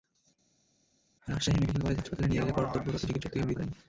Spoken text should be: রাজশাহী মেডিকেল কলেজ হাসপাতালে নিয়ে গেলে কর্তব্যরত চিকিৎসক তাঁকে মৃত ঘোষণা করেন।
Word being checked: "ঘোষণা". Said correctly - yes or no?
no